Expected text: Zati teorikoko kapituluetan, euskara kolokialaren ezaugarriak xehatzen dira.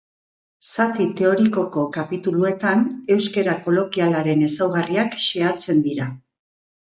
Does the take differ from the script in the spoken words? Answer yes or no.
no